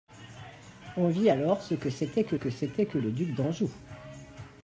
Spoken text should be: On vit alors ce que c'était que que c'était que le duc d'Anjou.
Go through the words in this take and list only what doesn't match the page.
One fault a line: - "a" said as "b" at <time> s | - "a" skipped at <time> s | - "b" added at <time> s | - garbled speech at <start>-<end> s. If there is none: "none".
none